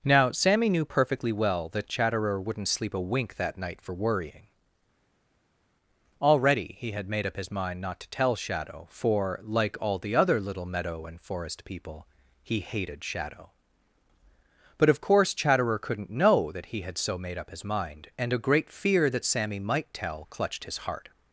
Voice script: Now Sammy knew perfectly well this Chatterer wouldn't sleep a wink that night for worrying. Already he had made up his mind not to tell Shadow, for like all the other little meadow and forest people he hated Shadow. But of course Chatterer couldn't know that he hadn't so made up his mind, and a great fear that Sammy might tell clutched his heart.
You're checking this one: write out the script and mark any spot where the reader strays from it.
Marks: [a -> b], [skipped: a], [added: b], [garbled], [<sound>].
Now Sammy knew perfectly well [this -> that] Chatterer wouldn't sleep a wink that night for worrying. Already he had made up his mind not to tell Shadow, for like all the other little meadow and forest people he hated Shadow. But of course Chatterer couldn't know that he [hadn't -> had] so made up his mind, and a great fear that Sammy might tell clutched his heart.